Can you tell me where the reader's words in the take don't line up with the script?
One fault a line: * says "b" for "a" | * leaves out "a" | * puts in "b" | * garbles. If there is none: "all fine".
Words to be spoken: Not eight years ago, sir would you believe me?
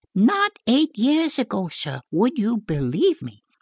all fine